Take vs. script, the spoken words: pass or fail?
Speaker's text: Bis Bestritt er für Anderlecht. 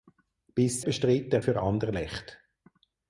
pass